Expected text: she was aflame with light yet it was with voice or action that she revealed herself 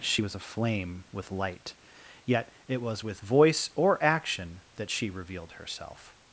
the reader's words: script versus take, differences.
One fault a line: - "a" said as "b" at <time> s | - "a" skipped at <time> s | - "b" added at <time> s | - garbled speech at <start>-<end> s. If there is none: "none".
none